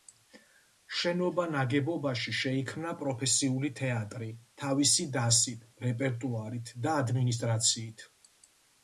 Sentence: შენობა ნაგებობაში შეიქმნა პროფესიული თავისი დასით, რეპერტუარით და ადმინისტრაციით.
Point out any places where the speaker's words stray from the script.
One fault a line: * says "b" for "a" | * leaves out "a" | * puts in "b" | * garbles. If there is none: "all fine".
* puts in "თეატრი"